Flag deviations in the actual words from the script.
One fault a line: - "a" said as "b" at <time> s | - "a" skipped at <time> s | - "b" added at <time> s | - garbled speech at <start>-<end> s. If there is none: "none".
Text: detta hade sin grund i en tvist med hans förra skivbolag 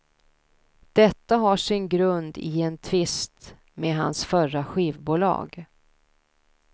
- "hade" said as "har" at 1.4 s